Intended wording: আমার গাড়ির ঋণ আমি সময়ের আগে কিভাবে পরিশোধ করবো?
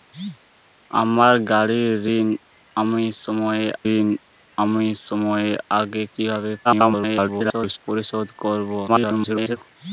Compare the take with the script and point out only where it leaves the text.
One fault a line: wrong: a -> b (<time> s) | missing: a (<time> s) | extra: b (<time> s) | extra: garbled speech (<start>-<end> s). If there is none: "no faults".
extra: ঋণ আমি সময়ের (3.9 s)
extra: garbled speech (6.6-7.8 s)
extra: garbled speech (8.9-9.6 s)